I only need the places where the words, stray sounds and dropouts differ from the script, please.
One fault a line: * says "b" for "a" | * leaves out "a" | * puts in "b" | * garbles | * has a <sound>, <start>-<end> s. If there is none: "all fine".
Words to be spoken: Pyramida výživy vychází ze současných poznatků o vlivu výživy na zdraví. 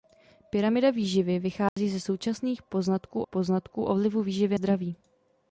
* has a dropout, 1.7-1.8 s
* puts in "poznatků"
* leaves out "na"